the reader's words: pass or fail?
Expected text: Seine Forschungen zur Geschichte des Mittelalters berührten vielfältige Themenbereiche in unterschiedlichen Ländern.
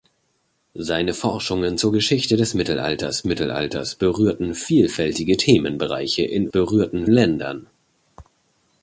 fail